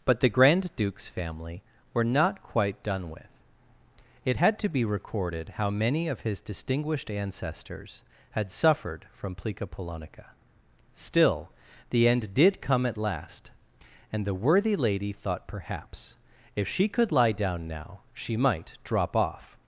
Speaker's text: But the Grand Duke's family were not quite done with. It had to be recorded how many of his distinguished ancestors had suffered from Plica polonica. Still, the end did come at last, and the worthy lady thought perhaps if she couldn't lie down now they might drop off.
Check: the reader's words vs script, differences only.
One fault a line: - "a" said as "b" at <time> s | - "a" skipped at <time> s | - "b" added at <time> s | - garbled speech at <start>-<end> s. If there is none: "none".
- "couldn't" said as "could" at 16.9 s
- "they" said as "she" at 18.1 s